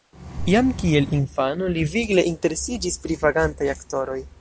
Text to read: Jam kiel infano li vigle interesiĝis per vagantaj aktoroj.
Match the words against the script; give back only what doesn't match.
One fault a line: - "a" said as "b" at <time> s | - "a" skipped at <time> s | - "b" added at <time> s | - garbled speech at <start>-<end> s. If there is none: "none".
- "per" said as "pri" at 3.0 s